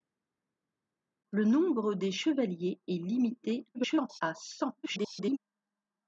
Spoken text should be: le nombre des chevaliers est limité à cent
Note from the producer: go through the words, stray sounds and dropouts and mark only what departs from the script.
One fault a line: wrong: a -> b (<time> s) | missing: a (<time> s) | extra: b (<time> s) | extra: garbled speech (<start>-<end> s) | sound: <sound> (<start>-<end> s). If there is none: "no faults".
extra: garbled speech (3.7-4.2 s)
extra: garbled speech (4.8-5.4 s)